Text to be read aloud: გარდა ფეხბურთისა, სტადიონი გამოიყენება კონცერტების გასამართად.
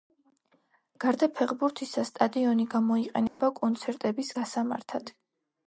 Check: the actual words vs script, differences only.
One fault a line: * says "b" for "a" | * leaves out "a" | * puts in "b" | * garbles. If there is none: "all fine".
all fine